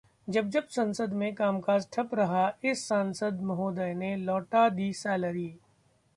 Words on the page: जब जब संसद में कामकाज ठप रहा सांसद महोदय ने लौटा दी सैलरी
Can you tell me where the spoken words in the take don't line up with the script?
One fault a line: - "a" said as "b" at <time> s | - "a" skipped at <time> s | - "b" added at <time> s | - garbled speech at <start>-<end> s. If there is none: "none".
- "इस" added at 2.6 s